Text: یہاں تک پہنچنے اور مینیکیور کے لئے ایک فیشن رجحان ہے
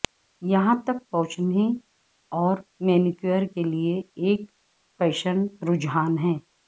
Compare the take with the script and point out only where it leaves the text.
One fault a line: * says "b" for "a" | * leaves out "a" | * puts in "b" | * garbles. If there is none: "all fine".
all fine